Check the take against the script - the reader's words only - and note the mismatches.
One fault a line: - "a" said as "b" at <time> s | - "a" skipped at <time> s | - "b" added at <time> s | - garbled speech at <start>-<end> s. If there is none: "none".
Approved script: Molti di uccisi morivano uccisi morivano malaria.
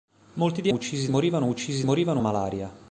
none